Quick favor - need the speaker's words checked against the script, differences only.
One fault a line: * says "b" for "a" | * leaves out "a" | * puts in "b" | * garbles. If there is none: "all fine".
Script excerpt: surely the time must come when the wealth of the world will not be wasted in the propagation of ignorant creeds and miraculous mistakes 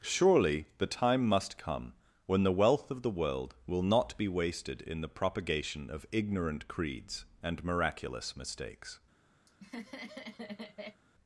all fine